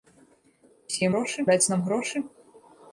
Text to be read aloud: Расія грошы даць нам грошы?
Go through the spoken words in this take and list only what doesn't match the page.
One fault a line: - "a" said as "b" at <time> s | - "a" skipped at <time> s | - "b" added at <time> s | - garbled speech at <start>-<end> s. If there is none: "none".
none